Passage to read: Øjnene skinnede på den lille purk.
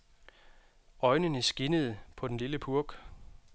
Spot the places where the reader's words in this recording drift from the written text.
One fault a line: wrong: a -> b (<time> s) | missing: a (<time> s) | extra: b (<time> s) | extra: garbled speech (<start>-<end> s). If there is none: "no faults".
no faults